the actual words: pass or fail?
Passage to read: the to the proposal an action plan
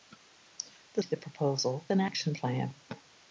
pass